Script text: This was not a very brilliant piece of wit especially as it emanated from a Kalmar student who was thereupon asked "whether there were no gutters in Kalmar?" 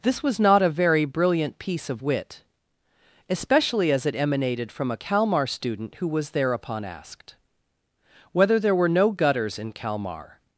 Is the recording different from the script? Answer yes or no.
no